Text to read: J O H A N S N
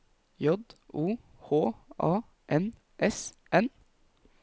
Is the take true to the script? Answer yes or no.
yes